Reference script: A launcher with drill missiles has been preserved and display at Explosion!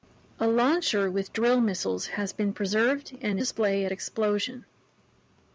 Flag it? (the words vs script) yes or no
no